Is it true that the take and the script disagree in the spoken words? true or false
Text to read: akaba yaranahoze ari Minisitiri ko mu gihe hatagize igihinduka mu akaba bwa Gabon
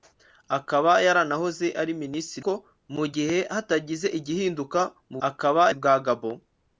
false